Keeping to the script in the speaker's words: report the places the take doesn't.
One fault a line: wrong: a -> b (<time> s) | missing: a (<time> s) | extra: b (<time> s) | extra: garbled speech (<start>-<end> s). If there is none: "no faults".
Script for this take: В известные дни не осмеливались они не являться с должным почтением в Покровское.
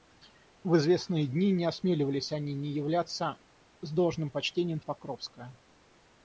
no faults